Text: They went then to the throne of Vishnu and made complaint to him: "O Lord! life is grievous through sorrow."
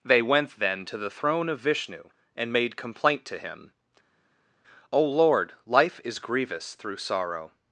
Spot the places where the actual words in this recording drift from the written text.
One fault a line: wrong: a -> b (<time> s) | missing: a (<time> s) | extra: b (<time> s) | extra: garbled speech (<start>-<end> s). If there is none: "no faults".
no faults